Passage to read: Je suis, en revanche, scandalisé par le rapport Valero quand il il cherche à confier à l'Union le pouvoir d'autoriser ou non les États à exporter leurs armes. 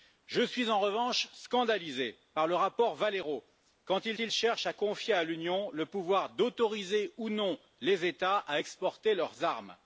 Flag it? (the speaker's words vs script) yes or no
no